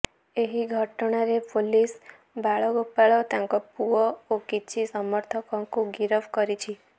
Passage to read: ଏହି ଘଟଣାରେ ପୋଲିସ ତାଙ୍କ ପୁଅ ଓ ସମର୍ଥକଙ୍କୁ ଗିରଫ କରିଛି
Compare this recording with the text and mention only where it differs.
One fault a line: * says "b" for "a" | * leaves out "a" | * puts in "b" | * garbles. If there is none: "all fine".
* puts in "ବାଳଗୋପାଳ"
* puts in "କିଛି"